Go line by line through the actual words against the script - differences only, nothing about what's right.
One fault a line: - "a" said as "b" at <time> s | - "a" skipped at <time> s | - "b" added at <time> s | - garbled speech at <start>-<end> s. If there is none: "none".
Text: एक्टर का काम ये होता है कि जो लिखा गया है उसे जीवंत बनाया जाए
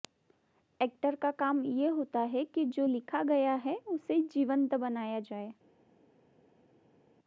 none